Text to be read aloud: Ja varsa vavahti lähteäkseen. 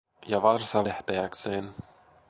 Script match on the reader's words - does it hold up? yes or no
no